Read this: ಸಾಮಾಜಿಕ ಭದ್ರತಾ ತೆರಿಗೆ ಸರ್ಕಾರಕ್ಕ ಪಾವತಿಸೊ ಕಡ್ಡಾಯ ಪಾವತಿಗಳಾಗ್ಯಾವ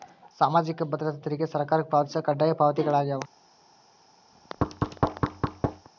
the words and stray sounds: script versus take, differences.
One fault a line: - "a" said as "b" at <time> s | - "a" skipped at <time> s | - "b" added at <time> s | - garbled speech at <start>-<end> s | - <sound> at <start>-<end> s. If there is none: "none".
- thud at 4.3-5.9 s